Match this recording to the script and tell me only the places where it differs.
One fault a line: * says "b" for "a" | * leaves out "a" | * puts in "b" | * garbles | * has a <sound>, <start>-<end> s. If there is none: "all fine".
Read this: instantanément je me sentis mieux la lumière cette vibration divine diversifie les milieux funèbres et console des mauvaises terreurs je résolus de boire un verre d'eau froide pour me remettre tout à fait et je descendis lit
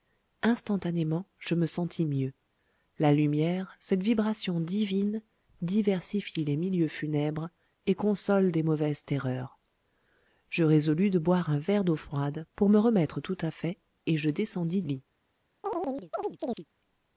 * has a chirp, 15.6-16.7 s